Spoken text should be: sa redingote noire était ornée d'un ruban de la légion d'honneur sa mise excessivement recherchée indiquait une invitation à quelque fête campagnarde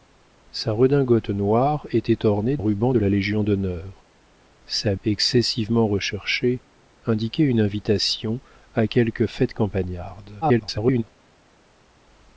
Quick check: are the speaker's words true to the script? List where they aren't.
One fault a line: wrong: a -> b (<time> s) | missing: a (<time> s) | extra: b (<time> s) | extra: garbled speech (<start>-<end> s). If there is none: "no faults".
missing: d'un (2.6 s)
missing: mise (4.9 s)
extra: garbled speech (10.4-11.0 s)